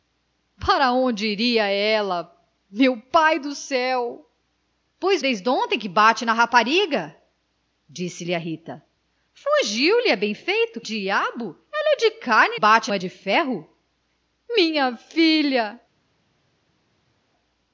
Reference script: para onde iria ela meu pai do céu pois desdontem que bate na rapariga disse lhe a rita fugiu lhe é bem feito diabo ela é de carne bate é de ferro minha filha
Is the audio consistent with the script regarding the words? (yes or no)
yes